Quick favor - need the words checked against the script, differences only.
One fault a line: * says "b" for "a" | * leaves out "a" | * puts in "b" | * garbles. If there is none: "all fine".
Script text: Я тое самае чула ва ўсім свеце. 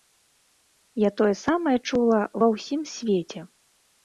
all fine